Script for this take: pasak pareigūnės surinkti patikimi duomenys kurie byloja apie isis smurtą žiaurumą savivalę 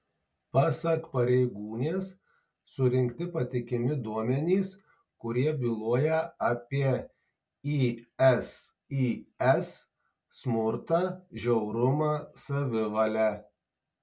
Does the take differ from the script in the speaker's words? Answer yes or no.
no